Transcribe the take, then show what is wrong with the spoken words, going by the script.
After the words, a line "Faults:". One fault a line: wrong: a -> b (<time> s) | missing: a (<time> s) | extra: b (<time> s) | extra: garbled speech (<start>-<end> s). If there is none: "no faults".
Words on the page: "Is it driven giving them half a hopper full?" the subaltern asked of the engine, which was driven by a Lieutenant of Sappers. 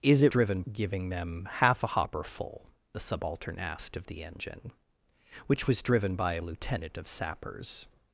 "Is it driven giving them half a hopper full?" the subaltern asked of the engine, which was driven by a Lieutenant of Sappers.
Faults:
no faults